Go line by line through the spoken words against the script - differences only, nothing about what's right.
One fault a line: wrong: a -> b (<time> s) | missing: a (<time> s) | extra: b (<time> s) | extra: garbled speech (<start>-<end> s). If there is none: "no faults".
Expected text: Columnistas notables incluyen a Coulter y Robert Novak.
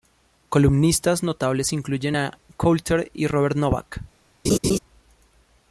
no faults